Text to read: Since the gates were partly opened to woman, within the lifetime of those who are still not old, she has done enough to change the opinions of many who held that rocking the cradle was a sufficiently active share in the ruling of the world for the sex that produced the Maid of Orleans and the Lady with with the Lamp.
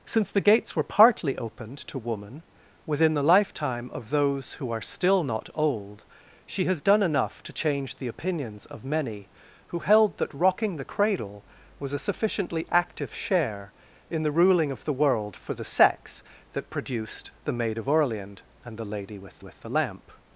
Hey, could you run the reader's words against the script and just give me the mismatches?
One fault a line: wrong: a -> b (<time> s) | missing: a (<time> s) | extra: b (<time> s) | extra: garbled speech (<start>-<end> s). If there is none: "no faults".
no faults